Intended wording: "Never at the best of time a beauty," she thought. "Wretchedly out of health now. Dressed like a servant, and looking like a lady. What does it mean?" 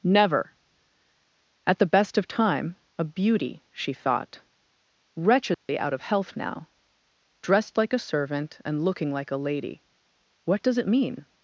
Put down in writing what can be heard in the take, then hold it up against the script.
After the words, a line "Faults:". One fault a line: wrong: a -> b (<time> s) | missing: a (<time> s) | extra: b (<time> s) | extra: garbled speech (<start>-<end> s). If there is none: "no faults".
"Never at the best of time a beauty," she thought. "Wretchedly out of health now. Dressed like a servant, and looking like a lady. What does it mean?"
Faults:
no faults